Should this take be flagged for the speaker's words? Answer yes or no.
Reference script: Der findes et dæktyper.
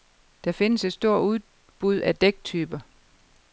yes